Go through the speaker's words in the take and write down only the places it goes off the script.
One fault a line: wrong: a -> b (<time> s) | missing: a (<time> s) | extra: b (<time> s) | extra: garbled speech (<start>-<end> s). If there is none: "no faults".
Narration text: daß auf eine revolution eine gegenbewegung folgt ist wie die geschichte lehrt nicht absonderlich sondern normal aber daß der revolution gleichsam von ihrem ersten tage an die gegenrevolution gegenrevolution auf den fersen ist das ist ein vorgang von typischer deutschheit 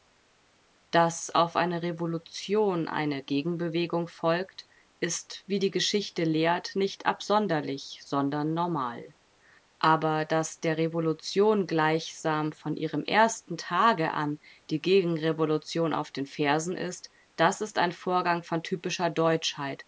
missing: gegenrevolution (15.9 s)